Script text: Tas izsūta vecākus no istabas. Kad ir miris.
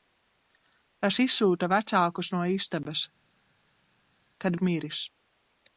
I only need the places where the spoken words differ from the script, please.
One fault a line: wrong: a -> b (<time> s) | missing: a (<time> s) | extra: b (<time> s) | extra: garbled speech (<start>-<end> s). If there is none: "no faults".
no faults